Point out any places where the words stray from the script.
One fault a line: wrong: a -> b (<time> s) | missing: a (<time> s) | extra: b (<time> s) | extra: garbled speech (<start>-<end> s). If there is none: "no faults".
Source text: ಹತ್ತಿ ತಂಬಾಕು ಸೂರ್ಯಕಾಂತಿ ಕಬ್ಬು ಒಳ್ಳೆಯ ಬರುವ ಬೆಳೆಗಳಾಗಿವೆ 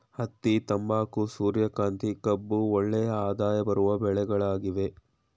extra: ಆದಾಯ (3.2 s)